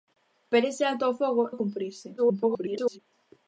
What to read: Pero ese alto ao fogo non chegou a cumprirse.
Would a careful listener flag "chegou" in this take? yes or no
yes